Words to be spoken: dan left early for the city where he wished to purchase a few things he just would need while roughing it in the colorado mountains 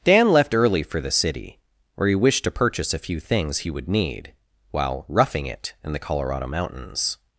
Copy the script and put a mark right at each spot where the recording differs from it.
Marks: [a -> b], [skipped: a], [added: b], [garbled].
dan left early for the city where he wished to purchase a few things he [skipped: just] would need while roughing it in the colorado mountains